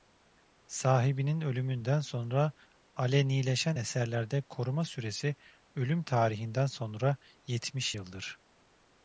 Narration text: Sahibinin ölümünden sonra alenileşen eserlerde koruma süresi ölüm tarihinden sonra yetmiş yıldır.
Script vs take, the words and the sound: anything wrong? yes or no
no